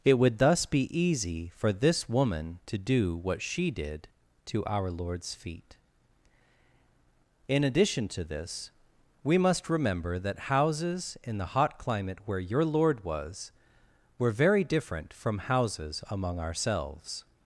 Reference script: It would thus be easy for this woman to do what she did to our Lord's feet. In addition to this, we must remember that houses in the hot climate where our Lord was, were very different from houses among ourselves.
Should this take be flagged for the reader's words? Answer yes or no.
yes